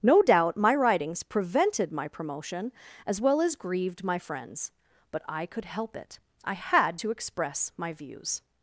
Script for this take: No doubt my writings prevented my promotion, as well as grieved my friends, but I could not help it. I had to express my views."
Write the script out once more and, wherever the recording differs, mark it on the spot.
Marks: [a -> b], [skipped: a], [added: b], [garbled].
No doubt my writings prevented my promotion, as well as grieved my friends, but I could [skipped: not] help it. I had to express my views."